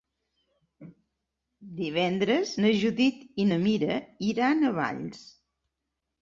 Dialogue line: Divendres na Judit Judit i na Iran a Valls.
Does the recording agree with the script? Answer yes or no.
no